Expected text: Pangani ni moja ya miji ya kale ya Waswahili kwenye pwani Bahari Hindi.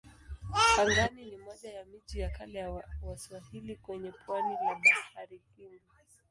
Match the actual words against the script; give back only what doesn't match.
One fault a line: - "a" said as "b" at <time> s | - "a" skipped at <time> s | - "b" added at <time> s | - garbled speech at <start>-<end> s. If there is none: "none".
- "la" added at 4.5 s